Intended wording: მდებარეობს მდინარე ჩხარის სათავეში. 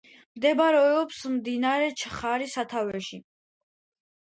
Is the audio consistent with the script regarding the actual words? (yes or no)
yes